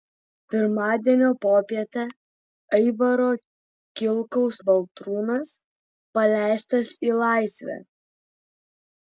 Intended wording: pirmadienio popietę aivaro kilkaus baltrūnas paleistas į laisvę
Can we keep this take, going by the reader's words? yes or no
yes